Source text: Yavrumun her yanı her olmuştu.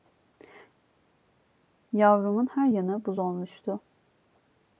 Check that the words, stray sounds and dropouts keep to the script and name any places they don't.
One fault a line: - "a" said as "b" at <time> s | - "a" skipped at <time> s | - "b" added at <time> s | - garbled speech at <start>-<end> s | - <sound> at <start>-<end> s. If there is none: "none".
- "her" said as "buz" at 3.0 s